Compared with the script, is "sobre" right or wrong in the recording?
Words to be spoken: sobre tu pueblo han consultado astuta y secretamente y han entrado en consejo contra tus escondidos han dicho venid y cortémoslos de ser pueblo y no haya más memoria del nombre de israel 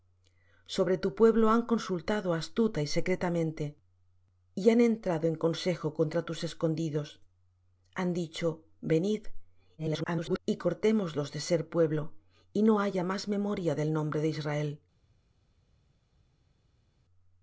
right